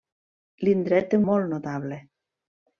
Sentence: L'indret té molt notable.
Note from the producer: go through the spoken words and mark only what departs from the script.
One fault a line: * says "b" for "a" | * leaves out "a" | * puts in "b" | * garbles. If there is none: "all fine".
all fine